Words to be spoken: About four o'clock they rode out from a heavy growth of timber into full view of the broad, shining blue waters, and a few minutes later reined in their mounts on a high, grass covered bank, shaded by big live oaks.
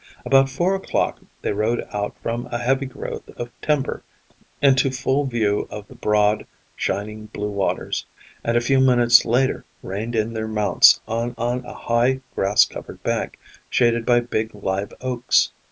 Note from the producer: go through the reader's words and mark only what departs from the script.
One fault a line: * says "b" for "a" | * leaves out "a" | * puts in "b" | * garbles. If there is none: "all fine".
* puts in "on"